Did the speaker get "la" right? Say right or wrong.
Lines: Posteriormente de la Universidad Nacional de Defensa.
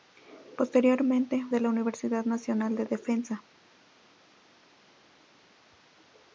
right